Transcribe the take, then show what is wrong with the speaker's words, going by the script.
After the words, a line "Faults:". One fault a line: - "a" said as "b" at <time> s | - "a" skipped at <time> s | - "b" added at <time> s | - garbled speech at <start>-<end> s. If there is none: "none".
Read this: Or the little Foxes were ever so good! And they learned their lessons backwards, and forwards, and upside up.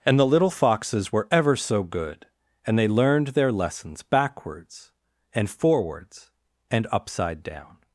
And the little Foxes were ever so good! And they learned their lessons backwards, and forwards, and upside down.
Faults:
- "Or" said as "And" at 0.1 s
- "up" said as "down" at 7.4 s